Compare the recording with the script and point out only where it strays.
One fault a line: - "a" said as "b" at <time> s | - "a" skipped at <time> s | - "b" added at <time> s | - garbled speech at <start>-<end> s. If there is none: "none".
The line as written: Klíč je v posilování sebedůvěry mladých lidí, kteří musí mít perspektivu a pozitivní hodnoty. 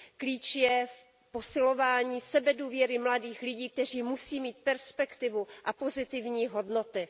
none